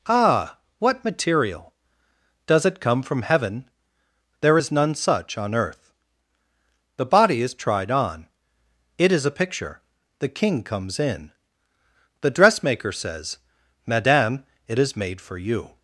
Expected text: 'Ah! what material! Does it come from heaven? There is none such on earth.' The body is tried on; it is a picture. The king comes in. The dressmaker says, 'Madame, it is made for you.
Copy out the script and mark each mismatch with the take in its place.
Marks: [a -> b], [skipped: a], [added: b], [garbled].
'Ah! what material! Does it come from heaven? There is none such on earth.' The body is tried on; it is a picture. The king comes in. The dressmaker says, 'Madame, it is made for you.